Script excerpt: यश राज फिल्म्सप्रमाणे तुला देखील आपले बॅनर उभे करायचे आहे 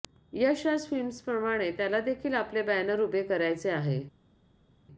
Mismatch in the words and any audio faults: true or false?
true